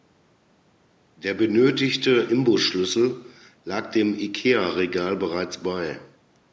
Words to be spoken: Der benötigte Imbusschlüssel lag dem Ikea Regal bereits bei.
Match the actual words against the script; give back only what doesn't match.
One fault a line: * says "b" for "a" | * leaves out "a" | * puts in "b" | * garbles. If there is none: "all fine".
all fine